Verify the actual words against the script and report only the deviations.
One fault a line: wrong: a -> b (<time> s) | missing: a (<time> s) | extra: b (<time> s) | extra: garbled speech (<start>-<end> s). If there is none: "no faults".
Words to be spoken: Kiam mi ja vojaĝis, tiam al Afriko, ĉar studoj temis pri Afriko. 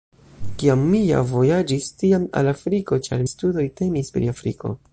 no faults